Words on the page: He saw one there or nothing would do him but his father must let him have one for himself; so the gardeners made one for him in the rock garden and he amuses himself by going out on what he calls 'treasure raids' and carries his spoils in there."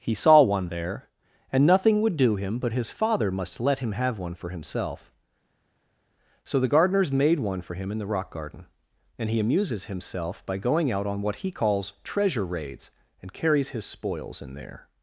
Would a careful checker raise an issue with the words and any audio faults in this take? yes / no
yes